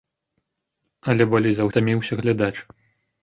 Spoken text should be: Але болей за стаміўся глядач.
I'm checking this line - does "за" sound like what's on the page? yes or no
yes